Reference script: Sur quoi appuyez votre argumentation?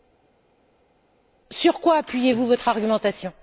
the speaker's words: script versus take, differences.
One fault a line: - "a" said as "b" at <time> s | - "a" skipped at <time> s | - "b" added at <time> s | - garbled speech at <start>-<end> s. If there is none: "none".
- "vous" added at 2.3 s